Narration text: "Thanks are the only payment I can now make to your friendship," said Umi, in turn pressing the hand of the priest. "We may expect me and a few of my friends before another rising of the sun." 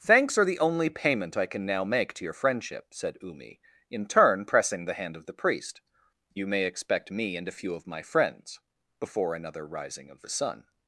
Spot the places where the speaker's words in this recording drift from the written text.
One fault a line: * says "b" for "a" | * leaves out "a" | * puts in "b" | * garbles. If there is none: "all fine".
* says "You" for "We"